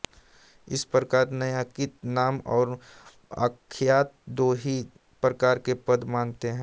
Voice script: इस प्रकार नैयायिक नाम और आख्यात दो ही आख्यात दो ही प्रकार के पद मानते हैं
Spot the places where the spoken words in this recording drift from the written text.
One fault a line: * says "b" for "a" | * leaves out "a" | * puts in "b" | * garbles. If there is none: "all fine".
* leaves out "आख्यात दो ही"